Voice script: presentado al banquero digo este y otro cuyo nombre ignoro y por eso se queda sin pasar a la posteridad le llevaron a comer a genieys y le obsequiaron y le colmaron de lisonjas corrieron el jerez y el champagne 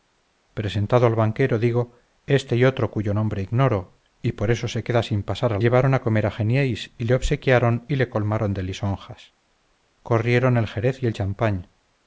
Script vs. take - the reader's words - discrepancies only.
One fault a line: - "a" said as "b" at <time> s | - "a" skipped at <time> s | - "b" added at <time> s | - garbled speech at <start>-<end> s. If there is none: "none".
- "la posteridad le" skipped at 5.6 s